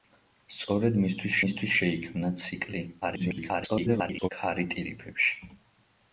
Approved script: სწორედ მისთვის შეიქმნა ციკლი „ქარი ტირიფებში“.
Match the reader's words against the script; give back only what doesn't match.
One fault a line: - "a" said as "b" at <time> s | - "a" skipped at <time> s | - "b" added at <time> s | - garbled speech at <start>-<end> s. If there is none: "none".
- "მისთვის" added at 1.4 s
- garbled speech at 3.0-4.3 s